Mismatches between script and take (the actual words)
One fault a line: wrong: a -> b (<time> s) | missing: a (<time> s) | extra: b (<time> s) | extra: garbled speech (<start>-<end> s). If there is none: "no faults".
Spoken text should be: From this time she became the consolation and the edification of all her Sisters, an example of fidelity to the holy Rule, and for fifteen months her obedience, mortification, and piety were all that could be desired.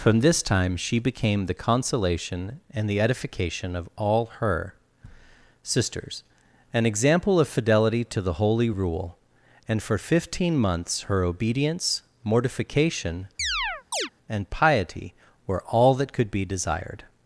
no faults